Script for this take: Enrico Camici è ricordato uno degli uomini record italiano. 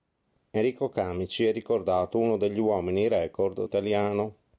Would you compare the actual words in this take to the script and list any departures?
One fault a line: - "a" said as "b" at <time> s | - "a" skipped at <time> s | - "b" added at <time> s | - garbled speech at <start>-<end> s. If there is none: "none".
none